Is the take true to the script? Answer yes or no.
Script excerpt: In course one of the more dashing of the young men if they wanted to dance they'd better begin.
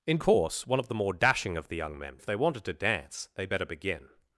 yes